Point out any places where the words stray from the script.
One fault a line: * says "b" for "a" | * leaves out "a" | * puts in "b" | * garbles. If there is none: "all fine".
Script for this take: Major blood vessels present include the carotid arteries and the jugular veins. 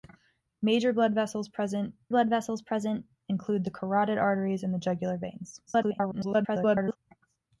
* puts in "blood vessels present"
* garbles